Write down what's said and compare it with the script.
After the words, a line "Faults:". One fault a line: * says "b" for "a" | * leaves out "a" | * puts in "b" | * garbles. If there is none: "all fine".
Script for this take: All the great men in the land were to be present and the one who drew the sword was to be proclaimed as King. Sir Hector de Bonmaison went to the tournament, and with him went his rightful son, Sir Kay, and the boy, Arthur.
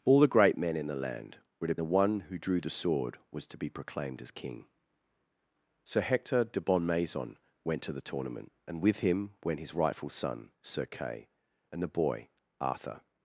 All the great men in the land were to the one who drew the sword was to be proclaimed as King. Sir Hector de Bonmaison went to the tournament, and with him went his rightful son, Sir Kay, and the boy, Arthur.
Faults:
* leaves out "be present and"